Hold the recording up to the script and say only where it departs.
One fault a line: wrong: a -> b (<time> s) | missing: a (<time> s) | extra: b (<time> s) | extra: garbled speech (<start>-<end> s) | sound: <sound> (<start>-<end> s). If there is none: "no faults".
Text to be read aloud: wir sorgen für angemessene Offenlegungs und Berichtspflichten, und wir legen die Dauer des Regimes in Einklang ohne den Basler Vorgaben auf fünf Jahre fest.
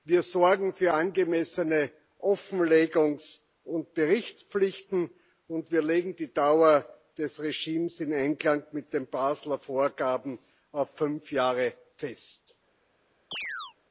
wrong: ohne -> mit (8.7 s)
sound: chirp (13.3-13.7 s)